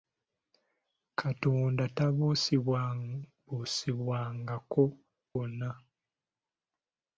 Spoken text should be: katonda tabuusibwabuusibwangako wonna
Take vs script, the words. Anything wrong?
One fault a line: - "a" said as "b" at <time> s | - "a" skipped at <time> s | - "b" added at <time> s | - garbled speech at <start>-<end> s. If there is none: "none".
none